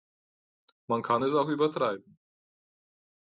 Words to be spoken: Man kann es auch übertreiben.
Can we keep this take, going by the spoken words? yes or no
yes